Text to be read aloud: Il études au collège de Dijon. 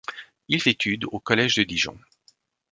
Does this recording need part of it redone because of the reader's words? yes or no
no